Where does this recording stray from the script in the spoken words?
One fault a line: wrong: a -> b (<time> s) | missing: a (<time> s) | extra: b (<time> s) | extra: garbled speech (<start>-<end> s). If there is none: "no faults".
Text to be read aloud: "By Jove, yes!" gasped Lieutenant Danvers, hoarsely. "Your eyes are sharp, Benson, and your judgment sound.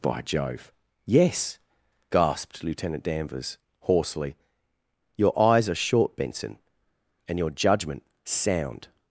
wrong: sharp -> short (5.8 s)